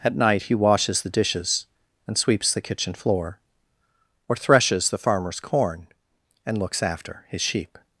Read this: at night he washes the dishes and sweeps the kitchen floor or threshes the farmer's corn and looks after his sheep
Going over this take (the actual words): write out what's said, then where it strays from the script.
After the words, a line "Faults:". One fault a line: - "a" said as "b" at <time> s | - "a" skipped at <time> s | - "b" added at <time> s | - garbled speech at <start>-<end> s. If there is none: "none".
at night he washes the dishes and sweeps the kitchen floor or threshes the farmer's corn and looks after his sheep
Faults:
none